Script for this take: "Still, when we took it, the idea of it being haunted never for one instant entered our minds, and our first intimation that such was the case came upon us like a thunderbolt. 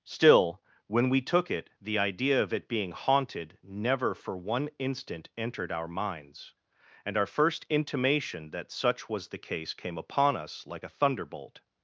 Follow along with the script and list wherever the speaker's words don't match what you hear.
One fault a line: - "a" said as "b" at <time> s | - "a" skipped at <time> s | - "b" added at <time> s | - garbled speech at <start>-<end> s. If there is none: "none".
none